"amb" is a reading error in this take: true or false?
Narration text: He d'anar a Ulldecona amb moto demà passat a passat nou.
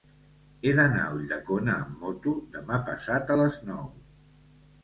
false